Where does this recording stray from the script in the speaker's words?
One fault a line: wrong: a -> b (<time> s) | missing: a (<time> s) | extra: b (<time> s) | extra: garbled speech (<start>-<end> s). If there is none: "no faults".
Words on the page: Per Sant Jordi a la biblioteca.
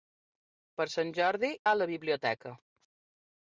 no faults